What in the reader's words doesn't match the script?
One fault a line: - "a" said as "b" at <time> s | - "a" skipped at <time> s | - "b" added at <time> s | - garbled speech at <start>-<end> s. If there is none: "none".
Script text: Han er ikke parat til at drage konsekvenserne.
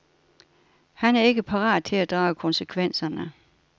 none